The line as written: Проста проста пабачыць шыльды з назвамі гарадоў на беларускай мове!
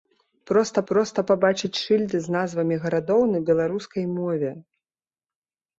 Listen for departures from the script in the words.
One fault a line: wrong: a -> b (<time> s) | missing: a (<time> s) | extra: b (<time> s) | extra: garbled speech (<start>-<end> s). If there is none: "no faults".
no faults